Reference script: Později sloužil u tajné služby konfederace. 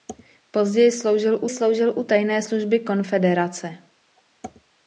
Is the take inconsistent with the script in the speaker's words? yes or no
yes